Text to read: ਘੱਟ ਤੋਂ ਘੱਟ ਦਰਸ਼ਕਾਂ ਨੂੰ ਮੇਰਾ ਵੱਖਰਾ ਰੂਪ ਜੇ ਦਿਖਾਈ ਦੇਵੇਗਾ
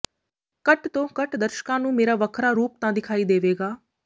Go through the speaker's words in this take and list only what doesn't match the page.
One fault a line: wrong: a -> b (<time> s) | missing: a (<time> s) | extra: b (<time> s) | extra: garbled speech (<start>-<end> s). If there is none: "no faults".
wrong: ਜੇ -> ਤਾਂ (2.8 s)